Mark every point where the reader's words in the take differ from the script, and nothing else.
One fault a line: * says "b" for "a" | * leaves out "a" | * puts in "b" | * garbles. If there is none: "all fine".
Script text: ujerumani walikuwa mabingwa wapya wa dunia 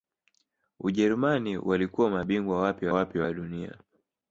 * puts in "wapya"